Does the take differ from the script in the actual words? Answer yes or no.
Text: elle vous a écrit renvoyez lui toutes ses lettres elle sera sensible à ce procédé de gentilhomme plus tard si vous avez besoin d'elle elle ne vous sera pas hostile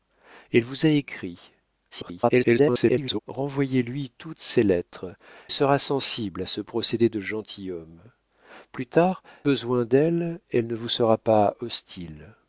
yes